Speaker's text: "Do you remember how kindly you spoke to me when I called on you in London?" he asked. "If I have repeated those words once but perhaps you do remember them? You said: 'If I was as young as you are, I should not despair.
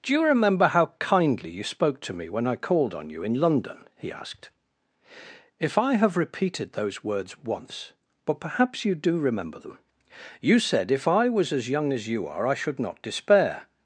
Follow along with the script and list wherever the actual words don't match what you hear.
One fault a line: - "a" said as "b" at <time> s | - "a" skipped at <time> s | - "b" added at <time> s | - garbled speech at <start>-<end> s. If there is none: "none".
none